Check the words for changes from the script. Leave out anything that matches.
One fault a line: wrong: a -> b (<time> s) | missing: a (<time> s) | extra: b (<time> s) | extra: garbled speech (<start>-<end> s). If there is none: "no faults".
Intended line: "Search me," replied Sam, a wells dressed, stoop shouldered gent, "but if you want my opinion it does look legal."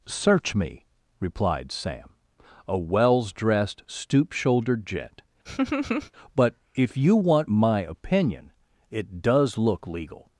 no faults